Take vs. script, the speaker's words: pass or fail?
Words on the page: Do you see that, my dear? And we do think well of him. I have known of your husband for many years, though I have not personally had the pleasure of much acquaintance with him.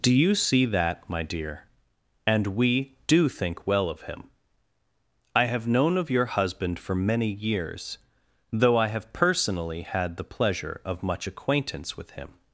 fail